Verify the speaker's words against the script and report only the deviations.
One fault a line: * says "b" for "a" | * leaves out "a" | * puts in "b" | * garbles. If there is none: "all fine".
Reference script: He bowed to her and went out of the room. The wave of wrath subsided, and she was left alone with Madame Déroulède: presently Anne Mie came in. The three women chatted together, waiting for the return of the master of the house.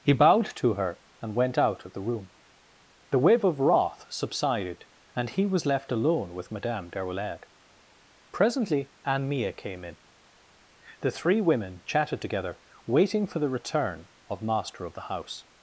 * says "he" for "she"
* leaves out "the"